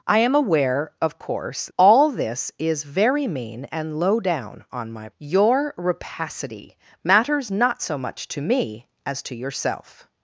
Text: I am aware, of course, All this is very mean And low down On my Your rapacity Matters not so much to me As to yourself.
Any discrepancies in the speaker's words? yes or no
no